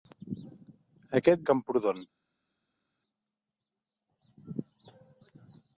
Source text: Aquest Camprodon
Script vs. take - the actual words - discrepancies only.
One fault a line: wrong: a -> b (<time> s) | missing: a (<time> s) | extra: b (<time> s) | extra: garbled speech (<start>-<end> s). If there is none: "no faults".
no faults